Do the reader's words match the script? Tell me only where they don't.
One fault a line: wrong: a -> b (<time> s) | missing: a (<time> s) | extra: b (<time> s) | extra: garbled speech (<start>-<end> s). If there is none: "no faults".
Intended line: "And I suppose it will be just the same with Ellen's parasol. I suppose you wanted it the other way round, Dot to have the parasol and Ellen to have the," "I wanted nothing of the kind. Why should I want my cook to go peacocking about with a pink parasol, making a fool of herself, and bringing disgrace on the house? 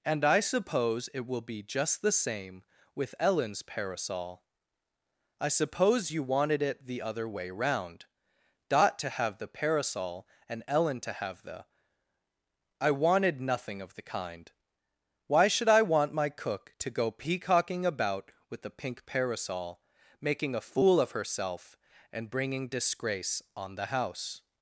wrong: a -> the (18.6 s)